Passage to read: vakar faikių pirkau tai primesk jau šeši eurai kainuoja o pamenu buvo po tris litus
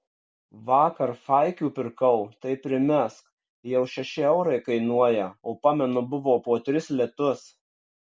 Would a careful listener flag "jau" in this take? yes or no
no